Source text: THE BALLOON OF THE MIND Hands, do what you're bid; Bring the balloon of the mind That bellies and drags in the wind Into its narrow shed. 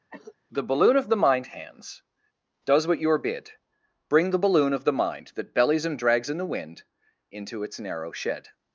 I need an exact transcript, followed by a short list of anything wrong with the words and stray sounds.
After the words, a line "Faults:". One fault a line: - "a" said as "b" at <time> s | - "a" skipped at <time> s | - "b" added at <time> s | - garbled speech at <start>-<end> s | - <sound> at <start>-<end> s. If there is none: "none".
THE BALLOON OF THE MIND Hands, does what you're bid; Bring the balloon of the mind That bellies and drags in the wind Into its narrow shed.
Faults:
- cough at 0.1-0.4 s
- "do" said as "does" at 2.6 s